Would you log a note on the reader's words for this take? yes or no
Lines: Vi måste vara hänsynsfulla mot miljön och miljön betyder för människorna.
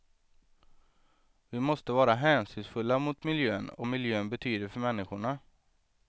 no